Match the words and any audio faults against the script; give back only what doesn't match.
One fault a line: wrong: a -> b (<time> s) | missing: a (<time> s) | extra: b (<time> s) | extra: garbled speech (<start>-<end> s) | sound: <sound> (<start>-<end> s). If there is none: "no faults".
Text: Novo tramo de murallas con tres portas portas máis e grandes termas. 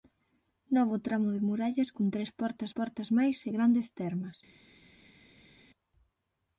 no faults